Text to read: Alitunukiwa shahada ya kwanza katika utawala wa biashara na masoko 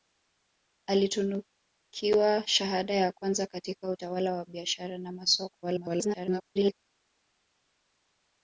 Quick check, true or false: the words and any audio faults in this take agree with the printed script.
false